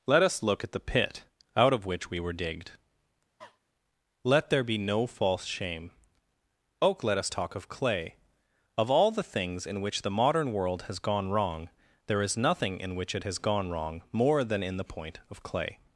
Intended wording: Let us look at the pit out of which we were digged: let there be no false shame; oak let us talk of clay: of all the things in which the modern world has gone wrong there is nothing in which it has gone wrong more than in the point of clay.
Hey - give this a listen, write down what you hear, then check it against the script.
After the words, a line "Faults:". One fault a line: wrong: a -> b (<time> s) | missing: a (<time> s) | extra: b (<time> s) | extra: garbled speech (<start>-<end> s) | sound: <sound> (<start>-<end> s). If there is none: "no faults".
Let us look at the pit out of which we were digged: let there be no false shame; oak let us talk of clay: of all the things in which the modern world has gone wrong there is nothing in which it has gone wrong more than in the point of clay.
Faults:
sound: cough (3.4-3.6 s)